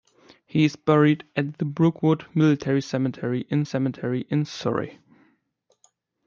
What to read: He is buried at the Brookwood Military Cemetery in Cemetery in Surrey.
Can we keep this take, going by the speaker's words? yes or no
yes